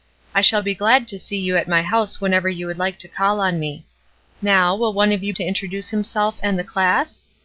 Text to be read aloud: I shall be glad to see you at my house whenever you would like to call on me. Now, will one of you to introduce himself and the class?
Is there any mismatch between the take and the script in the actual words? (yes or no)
no